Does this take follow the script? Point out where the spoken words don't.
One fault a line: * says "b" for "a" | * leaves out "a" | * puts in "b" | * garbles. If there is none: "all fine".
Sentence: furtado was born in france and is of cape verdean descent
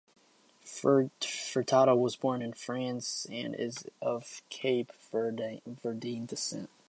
all fine